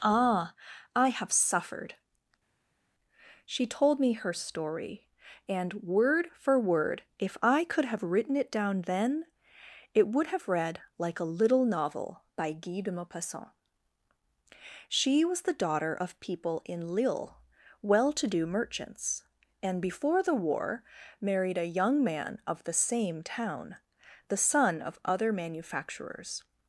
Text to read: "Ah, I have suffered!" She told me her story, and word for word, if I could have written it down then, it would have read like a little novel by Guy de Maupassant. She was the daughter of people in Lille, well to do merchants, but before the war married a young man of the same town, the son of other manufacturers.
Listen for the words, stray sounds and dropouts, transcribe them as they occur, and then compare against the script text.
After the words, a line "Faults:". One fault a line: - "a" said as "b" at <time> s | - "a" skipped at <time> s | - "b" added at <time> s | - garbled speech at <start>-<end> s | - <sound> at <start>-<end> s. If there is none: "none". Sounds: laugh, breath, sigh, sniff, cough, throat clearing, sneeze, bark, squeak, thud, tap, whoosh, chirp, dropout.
"Ah, I have suffered!" She told me her story, and word for word, if I could have written it down then, it would have read like a little novel by Guy de Maupassant. She was the daughter of people in Lille, well to do merchants, and before the war married a young man of the same town, the son of other manufacturers.
Faults:
- "but" said as "and" at 19.6 s